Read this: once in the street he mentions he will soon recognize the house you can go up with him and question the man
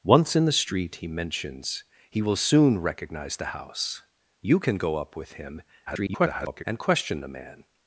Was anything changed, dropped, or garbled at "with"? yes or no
no